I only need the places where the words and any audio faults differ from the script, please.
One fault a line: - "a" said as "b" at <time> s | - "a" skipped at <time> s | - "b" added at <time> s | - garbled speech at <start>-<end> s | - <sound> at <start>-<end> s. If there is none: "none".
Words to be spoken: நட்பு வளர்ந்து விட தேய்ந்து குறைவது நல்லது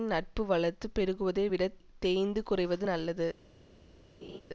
- "பெருகுவதை" added at 1.0 s
- laugh at 4.2-4.4 s